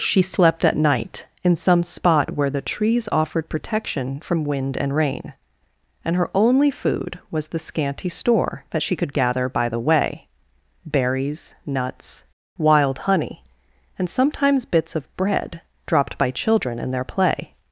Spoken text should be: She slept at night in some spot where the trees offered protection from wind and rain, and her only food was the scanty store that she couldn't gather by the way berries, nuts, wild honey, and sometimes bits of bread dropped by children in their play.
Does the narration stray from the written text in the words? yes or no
yes